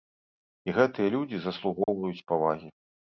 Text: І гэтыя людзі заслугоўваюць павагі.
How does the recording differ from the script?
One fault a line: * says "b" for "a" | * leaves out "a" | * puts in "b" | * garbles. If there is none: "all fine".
all fine